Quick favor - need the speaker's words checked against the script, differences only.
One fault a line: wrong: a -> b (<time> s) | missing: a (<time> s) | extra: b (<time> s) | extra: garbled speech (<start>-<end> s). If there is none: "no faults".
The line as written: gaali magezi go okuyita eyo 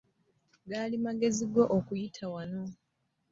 wrong: eyo -> wano (2.3 s)